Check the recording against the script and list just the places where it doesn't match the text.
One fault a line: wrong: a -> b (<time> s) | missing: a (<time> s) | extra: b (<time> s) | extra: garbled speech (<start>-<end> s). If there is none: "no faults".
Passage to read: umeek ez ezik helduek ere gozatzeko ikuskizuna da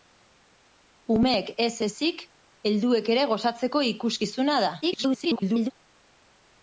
extra: garbled speech (4.8-5.7 s)